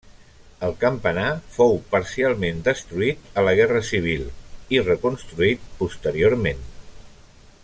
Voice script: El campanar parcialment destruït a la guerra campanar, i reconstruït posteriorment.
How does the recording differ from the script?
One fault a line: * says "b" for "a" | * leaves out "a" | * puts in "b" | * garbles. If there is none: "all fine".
* puts in "fou"
* says "civil" for "campanar"